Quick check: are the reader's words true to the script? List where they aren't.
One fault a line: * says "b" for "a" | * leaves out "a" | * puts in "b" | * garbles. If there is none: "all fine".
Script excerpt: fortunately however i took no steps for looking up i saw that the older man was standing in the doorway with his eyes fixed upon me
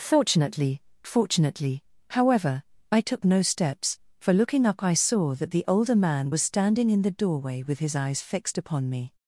* puts in "fortunately"